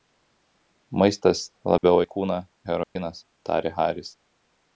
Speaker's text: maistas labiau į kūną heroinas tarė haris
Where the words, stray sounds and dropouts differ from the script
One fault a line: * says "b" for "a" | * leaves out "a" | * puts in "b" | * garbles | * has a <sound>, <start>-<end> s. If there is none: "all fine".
* has a dropout, 1.8-1.8 s
* has a dropout, 2.8-3.0 s